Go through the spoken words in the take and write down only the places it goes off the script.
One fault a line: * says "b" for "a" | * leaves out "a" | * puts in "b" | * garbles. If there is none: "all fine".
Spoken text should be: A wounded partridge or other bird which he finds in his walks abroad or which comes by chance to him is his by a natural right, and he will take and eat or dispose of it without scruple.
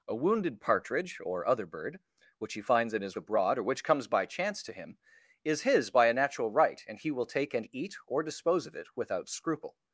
* leaves out "walks"